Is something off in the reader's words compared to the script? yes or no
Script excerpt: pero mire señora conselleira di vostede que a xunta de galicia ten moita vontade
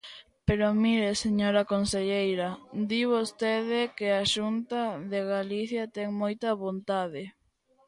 no